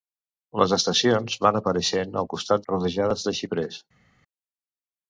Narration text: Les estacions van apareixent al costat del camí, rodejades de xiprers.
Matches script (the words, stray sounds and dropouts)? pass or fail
fail